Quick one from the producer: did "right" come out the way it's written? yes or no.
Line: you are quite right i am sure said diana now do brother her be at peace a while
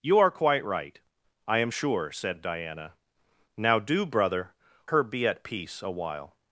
yes